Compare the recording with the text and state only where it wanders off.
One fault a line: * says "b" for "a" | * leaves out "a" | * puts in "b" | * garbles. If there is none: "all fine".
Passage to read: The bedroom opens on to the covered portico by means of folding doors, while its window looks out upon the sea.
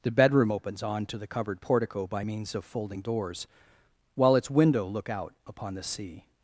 * says "look" for "looks"